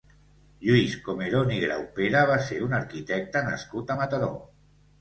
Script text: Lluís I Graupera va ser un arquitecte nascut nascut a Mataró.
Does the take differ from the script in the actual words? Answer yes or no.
yes